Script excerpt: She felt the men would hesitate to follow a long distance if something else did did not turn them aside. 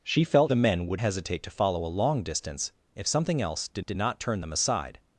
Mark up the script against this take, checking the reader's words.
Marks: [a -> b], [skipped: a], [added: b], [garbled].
She felt the men would hesitate to follow a long distance if something else did did not turn them aside.